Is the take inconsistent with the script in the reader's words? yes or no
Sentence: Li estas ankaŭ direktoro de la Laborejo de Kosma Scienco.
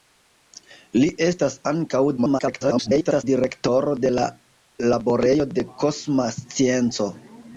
yes